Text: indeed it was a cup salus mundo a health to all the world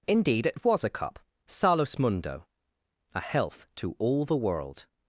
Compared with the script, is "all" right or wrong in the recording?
right